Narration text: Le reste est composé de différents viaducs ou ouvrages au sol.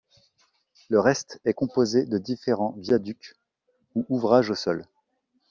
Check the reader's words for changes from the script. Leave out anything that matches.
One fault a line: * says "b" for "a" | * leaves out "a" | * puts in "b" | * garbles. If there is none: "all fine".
all fine